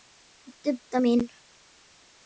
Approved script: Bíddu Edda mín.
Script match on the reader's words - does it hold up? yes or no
yes